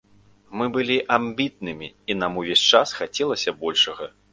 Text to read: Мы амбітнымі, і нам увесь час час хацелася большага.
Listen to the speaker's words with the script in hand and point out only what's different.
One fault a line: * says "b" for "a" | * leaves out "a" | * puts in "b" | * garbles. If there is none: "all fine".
* puts in "былі"
* leaves out "час"